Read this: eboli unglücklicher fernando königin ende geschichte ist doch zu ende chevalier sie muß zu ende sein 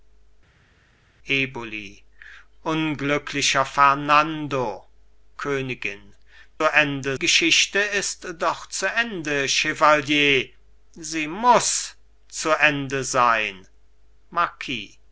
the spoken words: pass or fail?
pass